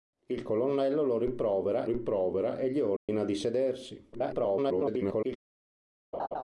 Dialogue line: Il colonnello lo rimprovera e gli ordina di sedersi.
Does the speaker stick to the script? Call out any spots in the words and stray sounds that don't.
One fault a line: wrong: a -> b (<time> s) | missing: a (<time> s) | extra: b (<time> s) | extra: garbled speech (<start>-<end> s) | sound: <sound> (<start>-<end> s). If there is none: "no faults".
extra: rimprovera (1.8 s)
sound: dropout (3.0-3.1 s)
extra: garbled speech (4.1-5.4 s)
sound: laugh (6.1-6.4 s)